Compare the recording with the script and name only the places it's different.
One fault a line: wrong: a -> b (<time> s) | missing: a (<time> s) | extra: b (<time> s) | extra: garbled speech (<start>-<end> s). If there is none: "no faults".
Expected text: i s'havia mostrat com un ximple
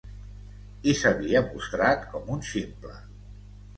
no faults